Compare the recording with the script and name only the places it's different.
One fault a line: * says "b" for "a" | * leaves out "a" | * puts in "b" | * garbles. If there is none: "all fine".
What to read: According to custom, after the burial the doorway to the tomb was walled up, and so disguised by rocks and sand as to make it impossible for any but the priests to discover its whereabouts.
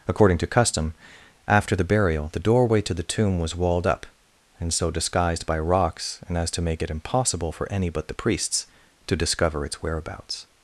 * leaves out "sand"